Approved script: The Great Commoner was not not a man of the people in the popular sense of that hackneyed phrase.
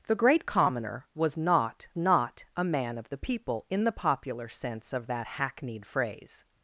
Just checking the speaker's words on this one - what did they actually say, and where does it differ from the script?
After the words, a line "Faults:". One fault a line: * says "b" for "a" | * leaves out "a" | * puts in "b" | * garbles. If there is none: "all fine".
The Great Commoner was not not a man of the people in the popular sense of that hackneyed phrase.
Faults:
all fine